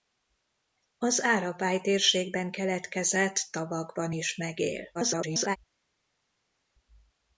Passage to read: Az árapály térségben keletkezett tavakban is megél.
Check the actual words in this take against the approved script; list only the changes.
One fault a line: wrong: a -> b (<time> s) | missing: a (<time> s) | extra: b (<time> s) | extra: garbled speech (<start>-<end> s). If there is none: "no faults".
extra: garbled speech (4.9-5.6 s)